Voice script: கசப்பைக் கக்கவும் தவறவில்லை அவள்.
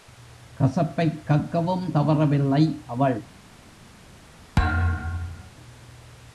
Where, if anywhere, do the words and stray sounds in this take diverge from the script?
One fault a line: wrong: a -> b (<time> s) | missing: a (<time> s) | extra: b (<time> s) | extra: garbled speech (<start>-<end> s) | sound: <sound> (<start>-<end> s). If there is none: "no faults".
sound: thud (4.6-5.5 s)